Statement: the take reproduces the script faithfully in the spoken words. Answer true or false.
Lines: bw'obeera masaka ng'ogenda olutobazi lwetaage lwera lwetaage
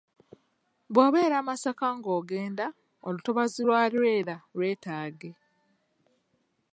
false